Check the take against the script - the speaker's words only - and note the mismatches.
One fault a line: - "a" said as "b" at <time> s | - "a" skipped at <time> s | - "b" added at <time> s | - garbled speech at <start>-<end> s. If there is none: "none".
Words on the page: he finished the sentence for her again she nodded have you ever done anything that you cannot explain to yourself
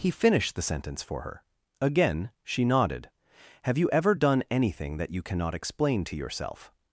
none